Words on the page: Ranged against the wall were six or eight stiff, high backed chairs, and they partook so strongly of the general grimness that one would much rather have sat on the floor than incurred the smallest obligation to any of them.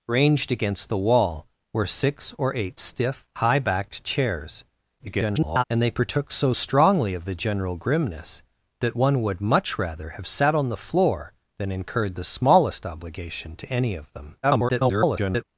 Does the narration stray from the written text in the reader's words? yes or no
yes